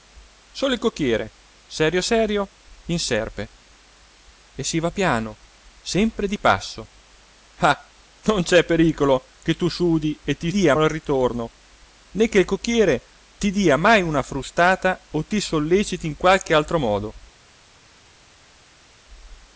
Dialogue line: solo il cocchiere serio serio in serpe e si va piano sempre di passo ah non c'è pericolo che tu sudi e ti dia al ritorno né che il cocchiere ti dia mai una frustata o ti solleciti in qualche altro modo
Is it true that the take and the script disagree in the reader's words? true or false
false